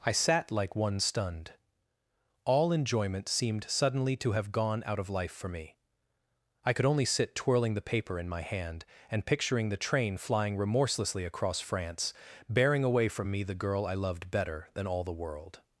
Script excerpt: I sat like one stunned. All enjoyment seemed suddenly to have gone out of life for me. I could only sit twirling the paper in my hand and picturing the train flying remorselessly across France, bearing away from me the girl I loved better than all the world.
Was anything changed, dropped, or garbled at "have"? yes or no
no